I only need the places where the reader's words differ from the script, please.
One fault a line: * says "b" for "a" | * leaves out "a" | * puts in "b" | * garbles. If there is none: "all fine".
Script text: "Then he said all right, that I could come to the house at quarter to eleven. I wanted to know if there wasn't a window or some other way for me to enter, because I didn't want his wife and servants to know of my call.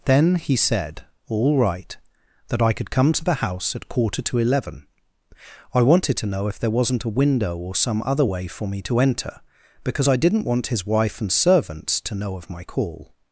all fine